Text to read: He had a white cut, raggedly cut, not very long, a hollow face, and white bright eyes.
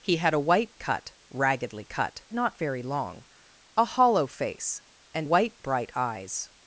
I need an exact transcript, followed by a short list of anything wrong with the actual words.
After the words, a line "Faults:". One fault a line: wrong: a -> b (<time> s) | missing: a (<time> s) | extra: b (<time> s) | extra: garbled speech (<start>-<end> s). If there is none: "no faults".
He had a white cut, raggedly cut, not very long, a hollow face, and white bright eyes.
Faults:
no faults